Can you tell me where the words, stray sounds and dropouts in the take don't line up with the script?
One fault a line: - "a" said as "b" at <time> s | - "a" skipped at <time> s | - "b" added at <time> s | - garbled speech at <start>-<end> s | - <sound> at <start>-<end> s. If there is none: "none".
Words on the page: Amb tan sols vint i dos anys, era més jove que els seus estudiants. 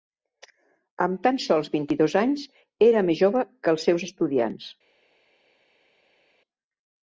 none